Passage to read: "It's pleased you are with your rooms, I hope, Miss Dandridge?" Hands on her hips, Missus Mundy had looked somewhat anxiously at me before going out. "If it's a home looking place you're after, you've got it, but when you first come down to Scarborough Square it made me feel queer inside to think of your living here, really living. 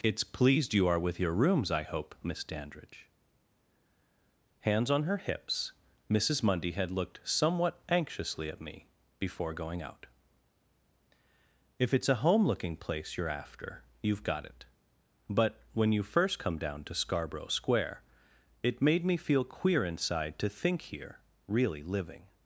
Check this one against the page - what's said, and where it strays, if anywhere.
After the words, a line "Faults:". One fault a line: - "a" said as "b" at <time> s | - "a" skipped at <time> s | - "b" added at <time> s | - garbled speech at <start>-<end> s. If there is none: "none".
"It's pleased you are with your rooms, I hope, Miss Dandridge?" Hands on her hips, Missus Mundy had looked somewhat anxiously at me before going out. "If it's a home looking place you're after, you've got it, but when you first come down to Scarborough Square it made me feel queer inside to think here, really living.
Faults:
- "of your living" skipped at 20.8 s